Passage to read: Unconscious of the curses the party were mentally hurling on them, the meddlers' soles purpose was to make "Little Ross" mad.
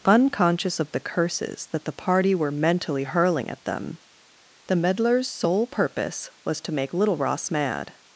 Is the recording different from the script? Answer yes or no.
yes